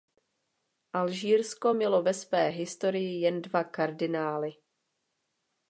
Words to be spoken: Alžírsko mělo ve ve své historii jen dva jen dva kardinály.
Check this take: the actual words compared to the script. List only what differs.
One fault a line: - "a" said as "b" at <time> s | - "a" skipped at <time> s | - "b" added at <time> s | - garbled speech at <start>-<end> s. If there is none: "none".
- "ve" skipped at 2.1 s
- "jen dva" skipped at 3.6 s